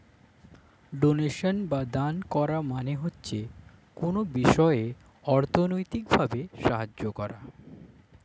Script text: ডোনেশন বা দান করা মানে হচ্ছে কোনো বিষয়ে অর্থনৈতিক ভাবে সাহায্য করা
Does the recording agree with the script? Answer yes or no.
yes